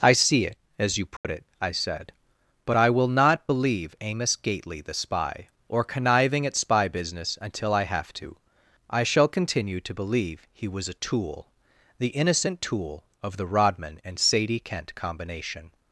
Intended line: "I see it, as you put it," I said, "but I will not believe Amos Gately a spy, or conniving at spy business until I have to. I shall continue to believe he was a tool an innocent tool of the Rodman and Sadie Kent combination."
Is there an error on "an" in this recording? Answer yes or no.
yes